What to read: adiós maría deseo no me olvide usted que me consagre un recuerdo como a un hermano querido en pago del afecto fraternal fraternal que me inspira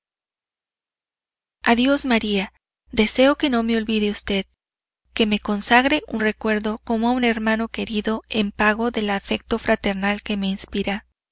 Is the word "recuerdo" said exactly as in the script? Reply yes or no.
yes